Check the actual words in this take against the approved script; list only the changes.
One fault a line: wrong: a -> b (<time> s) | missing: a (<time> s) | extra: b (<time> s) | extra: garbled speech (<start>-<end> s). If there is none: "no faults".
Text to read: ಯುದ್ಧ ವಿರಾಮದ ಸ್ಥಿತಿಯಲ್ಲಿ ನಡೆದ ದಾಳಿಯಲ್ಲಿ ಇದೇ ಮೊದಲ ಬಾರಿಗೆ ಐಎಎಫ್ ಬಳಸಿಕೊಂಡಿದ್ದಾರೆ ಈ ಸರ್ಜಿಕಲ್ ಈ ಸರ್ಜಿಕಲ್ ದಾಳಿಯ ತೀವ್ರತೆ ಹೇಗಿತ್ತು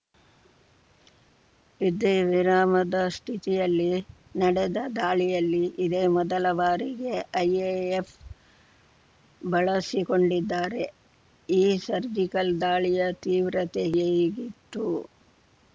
missing: ಈ ಸರ್ಜಿಕಲ್ (12.5 s)